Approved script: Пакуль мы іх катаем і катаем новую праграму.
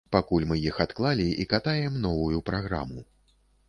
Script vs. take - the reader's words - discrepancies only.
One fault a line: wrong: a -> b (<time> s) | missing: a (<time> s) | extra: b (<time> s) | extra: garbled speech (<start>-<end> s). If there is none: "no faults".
wrong: катаем -> адклалі (0.8 s)